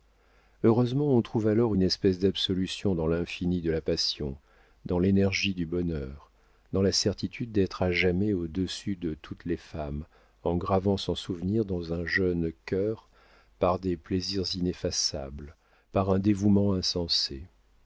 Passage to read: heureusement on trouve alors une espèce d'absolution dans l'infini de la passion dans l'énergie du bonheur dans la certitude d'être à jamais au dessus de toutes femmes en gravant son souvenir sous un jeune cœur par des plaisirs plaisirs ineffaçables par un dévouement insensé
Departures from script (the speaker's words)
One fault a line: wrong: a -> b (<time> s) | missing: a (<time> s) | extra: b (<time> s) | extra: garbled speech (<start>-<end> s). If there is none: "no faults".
extra: les (9.4 s)
wrong: sous -> dans (11.7 s)
missing: plaisirs (14.5 s)